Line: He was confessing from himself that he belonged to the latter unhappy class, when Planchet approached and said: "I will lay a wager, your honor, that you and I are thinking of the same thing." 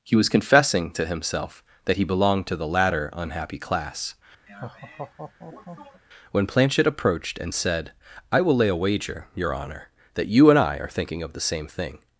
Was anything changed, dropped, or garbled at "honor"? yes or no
no